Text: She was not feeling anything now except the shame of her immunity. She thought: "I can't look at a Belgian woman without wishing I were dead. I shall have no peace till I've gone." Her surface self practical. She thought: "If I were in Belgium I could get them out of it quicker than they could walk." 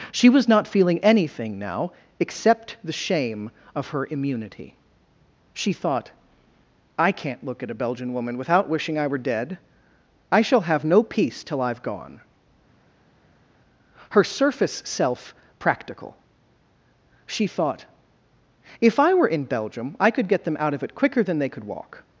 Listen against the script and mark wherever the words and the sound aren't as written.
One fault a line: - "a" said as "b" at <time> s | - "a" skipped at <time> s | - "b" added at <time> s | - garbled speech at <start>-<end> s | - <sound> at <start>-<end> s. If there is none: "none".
none